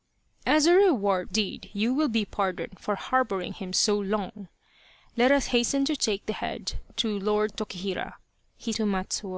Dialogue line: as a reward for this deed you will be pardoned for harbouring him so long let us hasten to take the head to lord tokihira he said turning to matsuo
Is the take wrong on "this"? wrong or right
wrong